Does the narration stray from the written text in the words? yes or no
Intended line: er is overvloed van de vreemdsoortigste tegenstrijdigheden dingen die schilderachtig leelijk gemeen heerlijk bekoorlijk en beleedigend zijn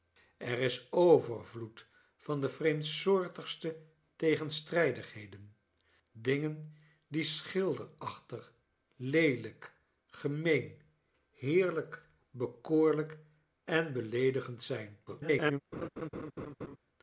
yes